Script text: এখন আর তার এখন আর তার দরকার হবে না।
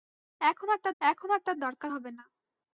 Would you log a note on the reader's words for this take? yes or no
no